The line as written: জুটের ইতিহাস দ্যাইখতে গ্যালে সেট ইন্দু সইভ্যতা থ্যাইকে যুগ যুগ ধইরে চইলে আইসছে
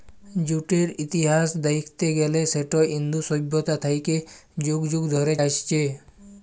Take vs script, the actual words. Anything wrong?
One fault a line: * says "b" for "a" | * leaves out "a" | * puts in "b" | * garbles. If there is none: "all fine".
* leaves out "চইলে"